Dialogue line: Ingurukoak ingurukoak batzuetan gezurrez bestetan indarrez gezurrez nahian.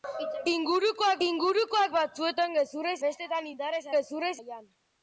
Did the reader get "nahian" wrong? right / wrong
right